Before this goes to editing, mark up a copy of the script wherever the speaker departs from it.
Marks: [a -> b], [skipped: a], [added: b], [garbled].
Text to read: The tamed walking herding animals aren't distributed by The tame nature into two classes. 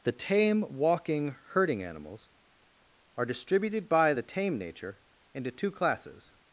The [tamed -> tame] walking herding animals [aren't -> are] distributed by The tame nature into two classes.